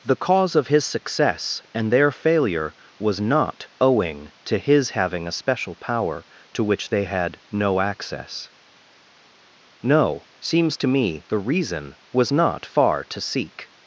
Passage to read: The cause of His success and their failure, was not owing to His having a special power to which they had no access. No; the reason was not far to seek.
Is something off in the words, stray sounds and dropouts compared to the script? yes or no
yes